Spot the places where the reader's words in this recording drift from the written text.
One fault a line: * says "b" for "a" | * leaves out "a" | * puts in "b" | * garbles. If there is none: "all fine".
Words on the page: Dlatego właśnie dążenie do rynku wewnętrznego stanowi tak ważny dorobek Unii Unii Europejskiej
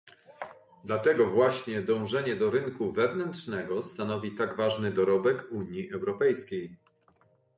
* leaves out "Unii"